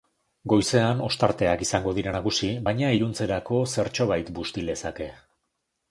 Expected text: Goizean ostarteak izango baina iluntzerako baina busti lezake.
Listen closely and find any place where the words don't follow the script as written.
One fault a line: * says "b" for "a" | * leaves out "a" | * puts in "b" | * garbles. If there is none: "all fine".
* puts in "dira nagusi"
* says "zertxobait" for "baina"